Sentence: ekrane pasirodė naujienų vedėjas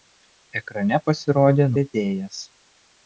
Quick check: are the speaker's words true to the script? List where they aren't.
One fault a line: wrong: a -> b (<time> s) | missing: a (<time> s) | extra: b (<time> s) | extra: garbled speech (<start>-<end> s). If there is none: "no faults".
missing: naujienų (1.7 s)